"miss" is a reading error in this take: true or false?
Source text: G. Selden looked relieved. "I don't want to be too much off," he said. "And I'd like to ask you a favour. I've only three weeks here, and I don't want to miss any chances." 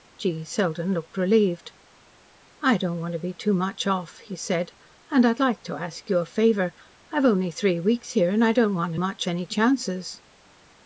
true